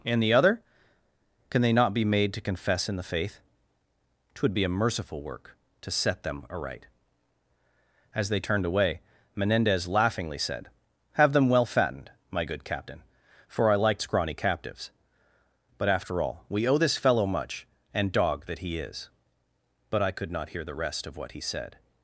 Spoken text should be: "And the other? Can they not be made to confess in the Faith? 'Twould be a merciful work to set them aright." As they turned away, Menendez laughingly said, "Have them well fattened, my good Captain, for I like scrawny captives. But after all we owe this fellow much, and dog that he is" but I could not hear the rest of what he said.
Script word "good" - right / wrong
right